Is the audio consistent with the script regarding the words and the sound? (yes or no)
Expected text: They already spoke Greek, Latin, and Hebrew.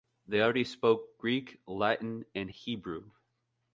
yes